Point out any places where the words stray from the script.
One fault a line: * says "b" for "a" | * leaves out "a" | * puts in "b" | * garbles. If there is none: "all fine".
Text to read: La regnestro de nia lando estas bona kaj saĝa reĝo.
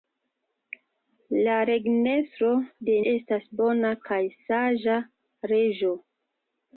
* leaves out "nia lando"